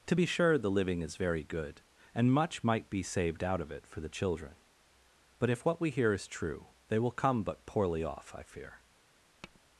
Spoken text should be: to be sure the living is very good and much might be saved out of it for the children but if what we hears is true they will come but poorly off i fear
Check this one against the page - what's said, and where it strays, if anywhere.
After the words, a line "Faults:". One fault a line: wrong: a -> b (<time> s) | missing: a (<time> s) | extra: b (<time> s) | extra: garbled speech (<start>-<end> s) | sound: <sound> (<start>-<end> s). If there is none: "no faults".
to be sure the living is very good and much might be saved out of it for the children but if what we hear is true they will come but poorly off i fear
Faults:
wrong: hears -> hear (5.9 s)
sound: tap (9.4-9.6 s)